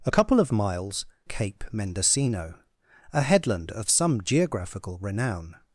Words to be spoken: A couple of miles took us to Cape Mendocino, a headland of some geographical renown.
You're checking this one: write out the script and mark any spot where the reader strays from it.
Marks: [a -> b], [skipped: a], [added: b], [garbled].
A couple of miles [skipped: took us to] Cape Mendocino, a headland of some geographical renown.